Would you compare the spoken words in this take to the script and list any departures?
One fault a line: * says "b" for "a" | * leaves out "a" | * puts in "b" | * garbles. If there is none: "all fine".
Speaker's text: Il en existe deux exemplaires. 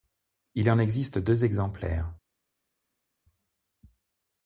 all fine